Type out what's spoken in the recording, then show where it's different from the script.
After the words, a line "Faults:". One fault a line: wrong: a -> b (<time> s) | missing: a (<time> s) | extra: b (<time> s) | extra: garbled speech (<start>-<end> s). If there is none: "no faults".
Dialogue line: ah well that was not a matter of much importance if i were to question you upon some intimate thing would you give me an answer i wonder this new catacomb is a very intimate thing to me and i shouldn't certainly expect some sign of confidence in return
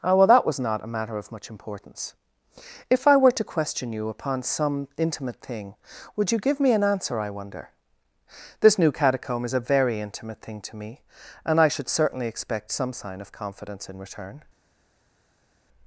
ah well that was not a matter of much importance if i were to question you upon some intimate thing would you give me an answer i wonder this new catacomb is a very intimate thing to me and i should certainly expect some sign of confidence in return
Faults:
wrong: shouldn't -> should (11.7 s)